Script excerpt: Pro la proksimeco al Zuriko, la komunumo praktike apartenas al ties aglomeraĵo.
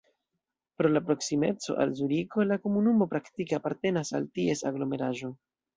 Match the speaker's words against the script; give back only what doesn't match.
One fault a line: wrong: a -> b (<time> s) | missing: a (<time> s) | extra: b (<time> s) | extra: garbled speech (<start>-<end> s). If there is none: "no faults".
no faults